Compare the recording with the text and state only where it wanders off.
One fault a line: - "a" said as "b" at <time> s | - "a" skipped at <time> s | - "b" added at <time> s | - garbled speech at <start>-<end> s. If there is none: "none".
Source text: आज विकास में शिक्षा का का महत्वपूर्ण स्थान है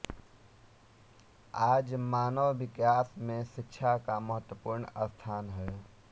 - "मानव" added at 2.0 s
- "का" skipped at 4.2 s